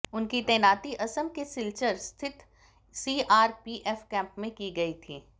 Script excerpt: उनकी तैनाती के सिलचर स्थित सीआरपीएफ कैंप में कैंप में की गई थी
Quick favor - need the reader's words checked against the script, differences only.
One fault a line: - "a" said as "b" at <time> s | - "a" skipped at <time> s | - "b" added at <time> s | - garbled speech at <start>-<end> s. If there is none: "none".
- "असम" added at 0.9 s
- "कैंप में" skipped at 4.5 s